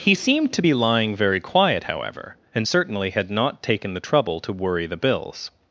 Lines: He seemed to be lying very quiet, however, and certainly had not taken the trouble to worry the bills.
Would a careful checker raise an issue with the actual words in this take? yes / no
no